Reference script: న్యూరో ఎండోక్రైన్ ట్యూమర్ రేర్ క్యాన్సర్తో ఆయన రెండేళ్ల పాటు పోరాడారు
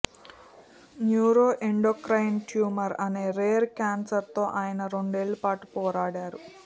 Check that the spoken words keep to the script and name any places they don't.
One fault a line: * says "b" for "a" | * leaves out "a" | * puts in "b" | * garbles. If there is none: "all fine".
* puts in "అనే"